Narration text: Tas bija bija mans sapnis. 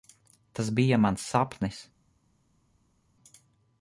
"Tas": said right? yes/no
yes